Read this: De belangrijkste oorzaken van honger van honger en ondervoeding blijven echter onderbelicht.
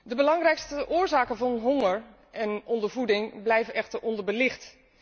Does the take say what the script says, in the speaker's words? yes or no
no